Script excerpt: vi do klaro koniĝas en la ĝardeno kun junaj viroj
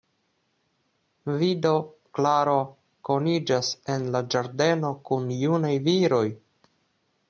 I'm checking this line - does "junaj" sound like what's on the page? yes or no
yes